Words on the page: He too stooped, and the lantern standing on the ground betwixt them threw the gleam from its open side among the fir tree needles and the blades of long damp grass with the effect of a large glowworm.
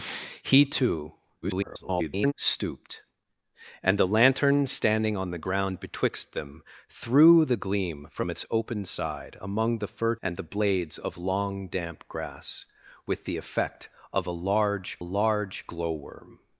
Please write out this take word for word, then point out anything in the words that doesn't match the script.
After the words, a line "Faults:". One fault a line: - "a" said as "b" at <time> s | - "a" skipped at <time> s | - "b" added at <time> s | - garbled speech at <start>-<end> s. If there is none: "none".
He too [garbled] stooped, and the lantern standing on the ground betwixt them threw the gleam from its open side among the fir and the blades of long damp grass with the effect of a large large glowworm.
Faults:
- garbled speech at 1.4-2.3 s
- "tree needles" skipped at 10.2 s
- "large" added at 15.0 s